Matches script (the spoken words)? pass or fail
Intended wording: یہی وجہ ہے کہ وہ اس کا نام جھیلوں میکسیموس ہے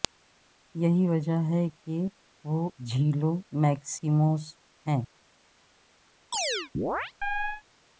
fail